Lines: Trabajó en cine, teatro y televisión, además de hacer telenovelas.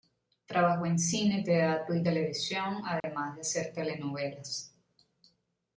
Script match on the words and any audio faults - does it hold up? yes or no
no